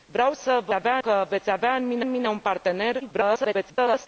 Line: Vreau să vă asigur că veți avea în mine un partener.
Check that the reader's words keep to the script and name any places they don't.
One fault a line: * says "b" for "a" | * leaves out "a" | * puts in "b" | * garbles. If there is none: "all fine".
* says "avea" for "asigur"
* puts in "în mine"
* garbles